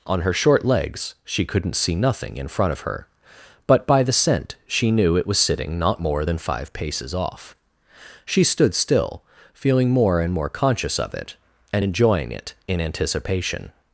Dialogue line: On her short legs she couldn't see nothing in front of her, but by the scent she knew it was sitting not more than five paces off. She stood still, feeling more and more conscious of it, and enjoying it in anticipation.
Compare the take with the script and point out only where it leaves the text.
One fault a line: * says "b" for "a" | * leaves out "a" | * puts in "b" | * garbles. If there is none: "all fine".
all fine